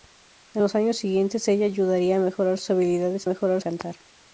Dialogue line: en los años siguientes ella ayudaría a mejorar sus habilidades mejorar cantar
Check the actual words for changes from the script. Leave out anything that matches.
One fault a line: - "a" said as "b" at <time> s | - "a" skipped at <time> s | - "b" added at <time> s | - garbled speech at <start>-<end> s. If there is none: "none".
none